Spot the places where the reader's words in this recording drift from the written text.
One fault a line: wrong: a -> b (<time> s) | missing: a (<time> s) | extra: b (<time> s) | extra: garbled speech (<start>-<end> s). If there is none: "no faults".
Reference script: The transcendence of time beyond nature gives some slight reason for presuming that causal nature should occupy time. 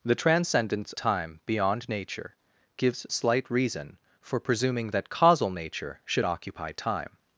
missing: of (0.9 s)
missing: some (3.1 s)